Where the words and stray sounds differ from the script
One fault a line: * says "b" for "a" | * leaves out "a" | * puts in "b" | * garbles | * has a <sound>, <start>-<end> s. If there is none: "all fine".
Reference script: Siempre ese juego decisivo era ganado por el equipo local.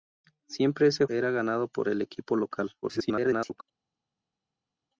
* leaves out "juego decisivo"
* garbles